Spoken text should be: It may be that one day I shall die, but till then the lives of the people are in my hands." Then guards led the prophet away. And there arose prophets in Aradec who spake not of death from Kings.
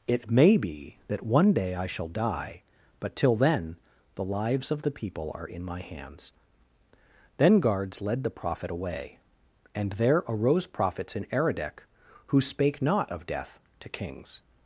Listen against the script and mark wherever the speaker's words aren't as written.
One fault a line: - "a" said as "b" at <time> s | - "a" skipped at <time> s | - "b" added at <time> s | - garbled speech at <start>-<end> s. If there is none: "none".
- "from" said as "to" at 13.8 s